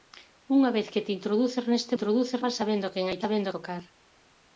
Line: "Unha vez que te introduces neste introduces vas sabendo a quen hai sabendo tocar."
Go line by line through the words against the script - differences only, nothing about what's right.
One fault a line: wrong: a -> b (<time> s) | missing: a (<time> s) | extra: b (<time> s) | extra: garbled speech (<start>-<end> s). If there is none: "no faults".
no faults